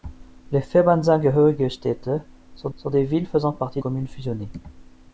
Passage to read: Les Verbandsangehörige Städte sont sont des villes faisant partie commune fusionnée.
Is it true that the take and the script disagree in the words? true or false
false